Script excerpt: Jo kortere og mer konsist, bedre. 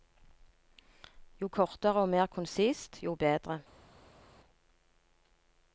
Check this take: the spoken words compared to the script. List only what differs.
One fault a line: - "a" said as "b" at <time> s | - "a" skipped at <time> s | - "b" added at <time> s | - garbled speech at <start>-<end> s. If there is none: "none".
- "jo" added at 3.0 s